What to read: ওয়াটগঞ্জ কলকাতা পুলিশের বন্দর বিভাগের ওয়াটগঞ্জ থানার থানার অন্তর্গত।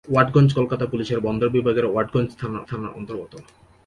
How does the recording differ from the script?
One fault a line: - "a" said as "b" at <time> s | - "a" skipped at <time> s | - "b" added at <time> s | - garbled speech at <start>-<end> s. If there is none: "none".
none